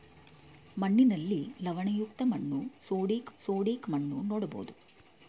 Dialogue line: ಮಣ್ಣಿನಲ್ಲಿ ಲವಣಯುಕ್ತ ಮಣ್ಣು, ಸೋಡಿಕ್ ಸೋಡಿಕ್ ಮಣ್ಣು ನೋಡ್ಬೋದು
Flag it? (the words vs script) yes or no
no